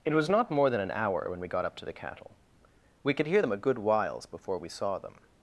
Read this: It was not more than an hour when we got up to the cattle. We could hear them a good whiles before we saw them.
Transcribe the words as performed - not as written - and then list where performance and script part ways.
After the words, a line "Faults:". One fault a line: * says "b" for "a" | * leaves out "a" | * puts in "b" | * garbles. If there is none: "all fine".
It was not more than an hour when we got up to the cattle. We could hear them a good whiles before we saw them.
Faults:
all fine